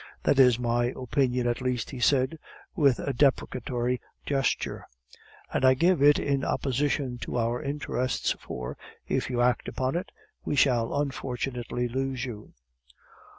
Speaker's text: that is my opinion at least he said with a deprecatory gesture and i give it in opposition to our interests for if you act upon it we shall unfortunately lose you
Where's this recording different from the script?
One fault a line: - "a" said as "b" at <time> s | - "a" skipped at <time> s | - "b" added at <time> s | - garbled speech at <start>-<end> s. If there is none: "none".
none